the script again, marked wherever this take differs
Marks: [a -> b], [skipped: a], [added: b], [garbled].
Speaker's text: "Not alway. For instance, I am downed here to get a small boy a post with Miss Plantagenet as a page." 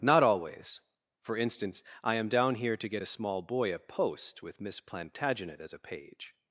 "Not [alway. -> always] For instance, I am [downed -> down] here to get a small boy a post with Miss Plantagenet as a page."